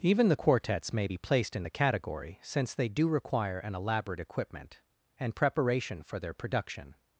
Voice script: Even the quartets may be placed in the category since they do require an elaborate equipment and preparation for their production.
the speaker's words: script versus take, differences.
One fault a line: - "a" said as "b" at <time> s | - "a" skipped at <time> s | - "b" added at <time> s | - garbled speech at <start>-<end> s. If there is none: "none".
none